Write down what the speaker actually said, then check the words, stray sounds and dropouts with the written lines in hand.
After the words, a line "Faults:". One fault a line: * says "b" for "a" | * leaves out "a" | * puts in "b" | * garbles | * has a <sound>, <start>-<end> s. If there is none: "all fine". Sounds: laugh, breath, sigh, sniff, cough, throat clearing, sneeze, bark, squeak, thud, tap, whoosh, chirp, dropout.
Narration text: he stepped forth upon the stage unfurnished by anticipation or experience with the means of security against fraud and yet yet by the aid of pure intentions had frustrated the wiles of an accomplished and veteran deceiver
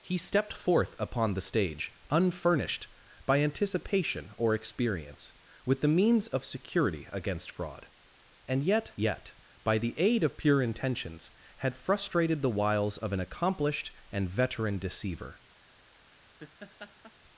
he stepped forth upon the stage unfurnished by anticipation or experience with the means of security against fraud and yet yet by the aid of pure intentions had frustrated the wiles of an accomplished and veteran deceiver
Faults:
* has a laugh, 16.4-17.1 s